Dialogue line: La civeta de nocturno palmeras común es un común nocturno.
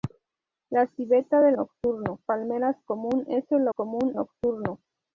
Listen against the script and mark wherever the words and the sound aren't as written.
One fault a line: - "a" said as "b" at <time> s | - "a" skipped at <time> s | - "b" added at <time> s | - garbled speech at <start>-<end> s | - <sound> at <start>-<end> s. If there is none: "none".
none